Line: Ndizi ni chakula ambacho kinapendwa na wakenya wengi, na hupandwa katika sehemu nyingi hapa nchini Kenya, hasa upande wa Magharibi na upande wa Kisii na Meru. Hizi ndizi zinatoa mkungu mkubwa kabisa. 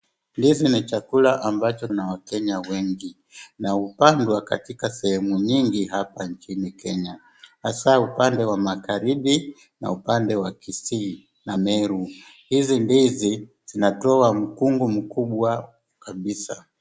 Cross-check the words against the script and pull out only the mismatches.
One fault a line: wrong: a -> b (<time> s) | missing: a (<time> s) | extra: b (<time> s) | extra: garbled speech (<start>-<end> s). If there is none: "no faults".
missing: kinapendwa (1.9 s)